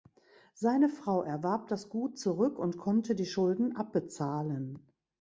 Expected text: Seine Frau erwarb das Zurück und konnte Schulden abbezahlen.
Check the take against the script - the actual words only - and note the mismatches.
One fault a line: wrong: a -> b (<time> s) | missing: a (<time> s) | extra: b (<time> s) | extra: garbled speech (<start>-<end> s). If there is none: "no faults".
extra: Gut (1.9 s)
extra: die (3.1 s)